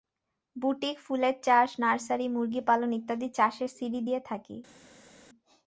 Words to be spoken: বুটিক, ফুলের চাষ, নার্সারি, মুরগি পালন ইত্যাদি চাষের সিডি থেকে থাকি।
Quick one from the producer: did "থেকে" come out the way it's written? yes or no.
no